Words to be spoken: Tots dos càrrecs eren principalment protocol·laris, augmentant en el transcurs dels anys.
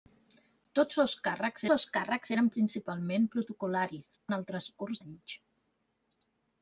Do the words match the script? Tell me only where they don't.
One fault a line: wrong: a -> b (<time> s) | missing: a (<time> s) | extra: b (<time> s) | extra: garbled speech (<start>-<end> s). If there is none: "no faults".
extra: dos càrrecs (1.7 s)
missing: augmentant (4.1 s)
missing: dels (5.0 s)